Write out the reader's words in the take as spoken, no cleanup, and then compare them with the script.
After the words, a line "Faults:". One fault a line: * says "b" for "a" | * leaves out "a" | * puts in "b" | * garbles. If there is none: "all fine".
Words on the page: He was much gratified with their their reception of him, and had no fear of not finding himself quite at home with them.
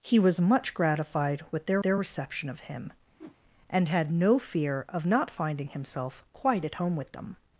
He was much gratified with their their reception of him, and had no fear of not finding himself quite at home with them.
Faults:
all fine